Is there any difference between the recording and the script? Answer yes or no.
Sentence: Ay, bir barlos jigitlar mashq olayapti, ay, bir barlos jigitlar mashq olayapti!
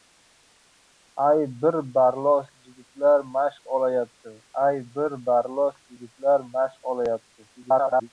yes